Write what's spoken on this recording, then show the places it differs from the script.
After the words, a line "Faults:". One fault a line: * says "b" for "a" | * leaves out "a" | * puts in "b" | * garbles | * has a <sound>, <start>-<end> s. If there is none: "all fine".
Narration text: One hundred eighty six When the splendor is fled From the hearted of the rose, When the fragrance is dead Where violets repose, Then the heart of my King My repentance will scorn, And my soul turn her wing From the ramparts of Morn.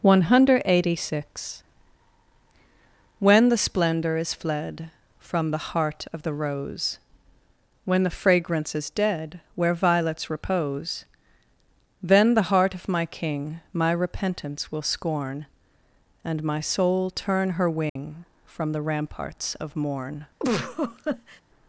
One hundred eighty six When the splendor is fled From the heart of the rose, When the fragrance is dead Where violets repose, Then the heart of my King My repentance will scorn, And my soul turn her wing From the ramparts of Morn.
Faults:
* says "heart" for "hearted"
* has a dropout, 17.9-18.0 s
* has a laugh, 20.4-21.4 s